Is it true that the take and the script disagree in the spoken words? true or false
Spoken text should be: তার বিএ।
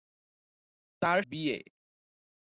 false